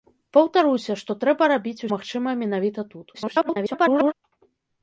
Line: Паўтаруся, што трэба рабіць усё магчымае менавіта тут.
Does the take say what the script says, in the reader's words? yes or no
no